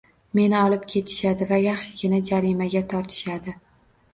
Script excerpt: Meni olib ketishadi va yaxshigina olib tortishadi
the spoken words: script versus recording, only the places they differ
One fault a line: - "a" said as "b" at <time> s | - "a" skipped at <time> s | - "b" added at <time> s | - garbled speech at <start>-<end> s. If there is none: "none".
- "olib" said as "jarimaga" at 2.3 s